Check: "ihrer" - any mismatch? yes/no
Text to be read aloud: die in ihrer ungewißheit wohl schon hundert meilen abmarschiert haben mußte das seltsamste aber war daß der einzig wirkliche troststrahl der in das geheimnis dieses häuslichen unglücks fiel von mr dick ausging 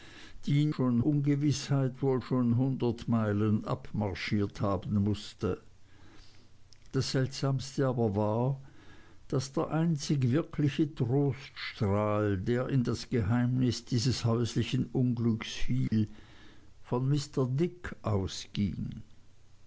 yes